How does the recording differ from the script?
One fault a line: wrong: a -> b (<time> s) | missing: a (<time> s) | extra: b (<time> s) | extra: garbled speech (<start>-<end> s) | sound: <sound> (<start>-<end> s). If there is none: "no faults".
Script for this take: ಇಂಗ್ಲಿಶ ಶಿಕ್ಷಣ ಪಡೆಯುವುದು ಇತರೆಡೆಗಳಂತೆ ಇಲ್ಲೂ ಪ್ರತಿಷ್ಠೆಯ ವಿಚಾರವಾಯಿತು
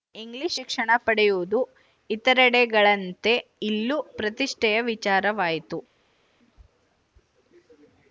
no faults